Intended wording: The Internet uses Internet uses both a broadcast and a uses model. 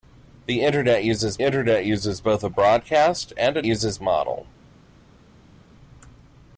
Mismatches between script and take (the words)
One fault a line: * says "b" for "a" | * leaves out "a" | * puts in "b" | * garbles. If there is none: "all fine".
all fine